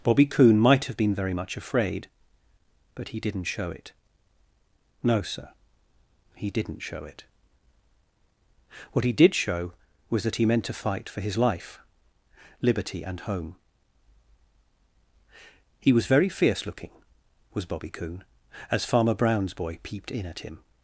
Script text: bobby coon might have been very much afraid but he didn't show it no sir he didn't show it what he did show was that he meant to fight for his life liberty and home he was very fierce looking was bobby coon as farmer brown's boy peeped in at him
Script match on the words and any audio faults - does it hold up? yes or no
yes